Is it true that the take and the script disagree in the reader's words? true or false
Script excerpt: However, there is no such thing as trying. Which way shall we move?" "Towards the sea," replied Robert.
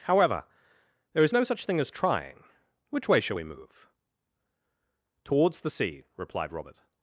false